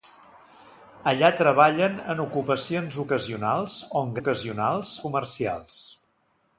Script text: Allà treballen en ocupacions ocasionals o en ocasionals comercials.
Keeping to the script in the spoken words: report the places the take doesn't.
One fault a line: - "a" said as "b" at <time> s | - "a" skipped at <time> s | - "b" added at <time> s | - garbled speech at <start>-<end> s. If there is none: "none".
none